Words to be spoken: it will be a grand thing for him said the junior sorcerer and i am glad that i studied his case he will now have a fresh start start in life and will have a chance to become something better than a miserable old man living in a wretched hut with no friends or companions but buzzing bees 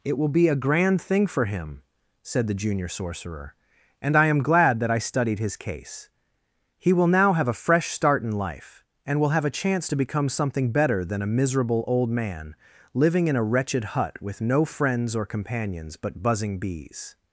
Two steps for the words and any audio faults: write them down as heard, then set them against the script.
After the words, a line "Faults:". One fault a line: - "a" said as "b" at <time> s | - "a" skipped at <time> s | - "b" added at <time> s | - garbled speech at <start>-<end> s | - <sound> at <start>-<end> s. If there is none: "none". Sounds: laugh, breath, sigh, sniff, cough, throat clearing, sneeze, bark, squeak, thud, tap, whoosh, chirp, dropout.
it will be a grand thing for him said the junior sorcerer and i am glad that i studied his case he will now have a fresh start in life and will have a chance to become something better than a miserable old man living in a wretched hut with no friends or companions but buzzing bees
Faults:
- "start" skipped at 8.2 s